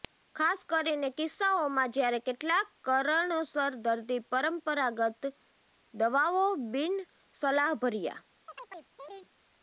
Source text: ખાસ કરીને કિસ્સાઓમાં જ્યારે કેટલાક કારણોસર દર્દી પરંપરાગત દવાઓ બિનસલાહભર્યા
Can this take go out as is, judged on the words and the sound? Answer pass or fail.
fail